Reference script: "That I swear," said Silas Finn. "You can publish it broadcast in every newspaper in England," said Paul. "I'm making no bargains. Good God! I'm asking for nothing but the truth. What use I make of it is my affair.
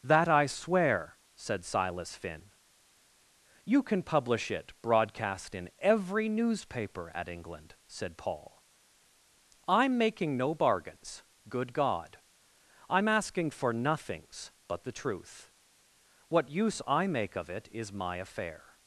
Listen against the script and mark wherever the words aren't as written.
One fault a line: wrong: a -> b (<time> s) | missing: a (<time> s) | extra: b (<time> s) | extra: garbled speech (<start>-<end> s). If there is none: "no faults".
wrong: in -> at (7.2 s)
wrong: nothing -> nothings (13.7 s)